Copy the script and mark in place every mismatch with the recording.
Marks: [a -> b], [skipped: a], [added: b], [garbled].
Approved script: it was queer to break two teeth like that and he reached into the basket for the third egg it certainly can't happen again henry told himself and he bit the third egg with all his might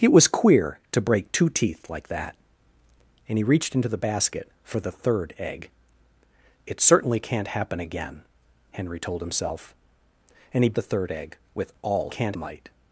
it was queer to break two teeth like that and he reached into the basket for the third egg it certainly can't happen again henry told himself and he [skipped: bit] the third egg with all [his -> can't] might